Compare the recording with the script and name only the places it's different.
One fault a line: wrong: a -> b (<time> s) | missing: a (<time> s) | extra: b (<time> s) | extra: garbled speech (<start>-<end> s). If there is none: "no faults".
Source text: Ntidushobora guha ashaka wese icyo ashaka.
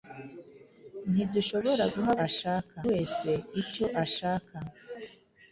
no faults